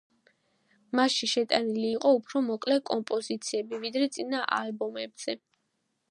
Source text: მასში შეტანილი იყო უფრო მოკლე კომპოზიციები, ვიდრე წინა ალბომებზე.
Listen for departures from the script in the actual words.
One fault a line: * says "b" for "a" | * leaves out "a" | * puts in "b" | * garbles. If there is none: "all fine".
all fine